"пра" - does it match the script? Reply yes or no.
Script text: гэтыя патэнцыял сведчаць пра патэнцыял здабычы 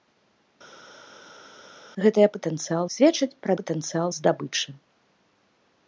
yes